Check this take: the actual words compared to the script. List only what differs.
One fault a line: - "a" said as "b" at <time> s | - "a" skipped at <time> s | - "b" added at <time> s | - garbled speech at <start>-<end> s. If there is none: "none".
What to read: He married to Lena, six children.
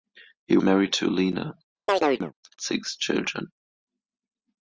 none